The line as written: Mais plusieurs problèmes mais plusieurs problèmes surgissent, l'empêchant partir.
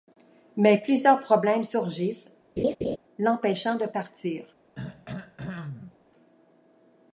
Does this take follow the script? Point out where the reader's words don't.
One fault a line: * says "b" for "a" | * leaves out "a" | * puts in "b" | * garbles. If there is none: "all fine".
* leaves out "mais plusieurs problèmes"
* puts in "de"